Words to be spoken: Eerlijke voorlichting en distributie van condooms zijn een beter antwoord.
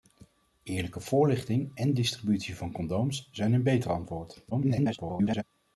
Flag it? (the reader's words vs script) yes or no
yes